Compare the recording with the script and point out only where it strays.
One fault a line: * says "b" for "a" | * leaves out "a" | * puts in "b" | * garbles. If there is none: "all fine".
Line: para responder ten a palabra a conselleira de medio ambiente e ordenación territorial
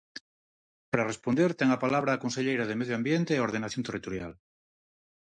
all fine